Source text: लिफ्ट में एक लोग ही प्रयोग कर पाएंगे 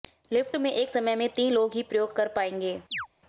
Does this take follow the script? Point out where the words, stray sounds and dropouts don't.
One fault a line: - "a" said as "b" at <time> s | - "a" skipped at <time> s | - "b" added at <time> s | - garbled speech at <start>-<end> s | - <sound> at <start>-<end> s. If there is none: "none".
- "समय में तीन" added at 0.9 s
- chirp at 2.9-3.1 s